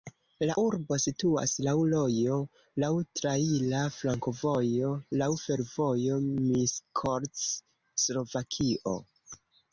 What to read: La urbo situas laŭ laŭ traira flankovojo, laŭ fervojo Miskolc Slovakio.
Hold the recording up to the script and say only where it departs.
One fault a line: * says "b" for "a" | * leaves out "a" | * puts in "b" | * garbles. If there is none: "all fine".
* puts in "rojo"